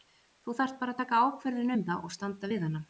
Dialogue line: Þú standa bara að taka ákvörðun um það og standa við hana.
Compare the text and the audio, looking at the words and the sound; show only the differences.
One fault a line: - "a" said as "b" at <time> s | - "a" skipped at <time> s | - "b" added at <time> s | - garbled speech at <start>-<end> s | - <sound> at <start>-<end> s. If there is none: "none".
- "standa" said as "þarft" at 0.6 s